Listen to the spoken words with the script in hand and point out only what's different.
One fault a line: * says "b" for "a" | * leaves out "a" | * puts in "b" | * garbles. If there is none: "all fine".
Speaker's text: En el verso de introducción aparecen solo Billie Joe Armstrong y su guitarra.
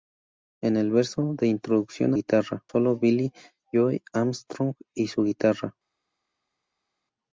* says "guitarra" for "aparecen"